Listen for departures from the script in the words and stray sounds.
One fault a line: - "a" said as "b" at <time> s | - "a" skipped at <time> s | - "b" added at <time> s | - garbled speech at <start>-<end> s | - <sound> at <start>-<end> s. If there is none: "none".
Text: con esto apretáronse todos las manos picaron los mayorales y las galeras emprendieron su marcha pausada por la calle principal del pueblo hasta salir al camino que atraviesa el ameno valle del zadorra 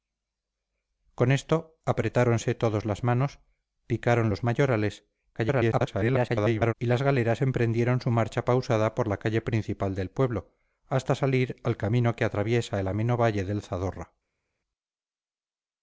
- garbled speech at 5.3-6.7 s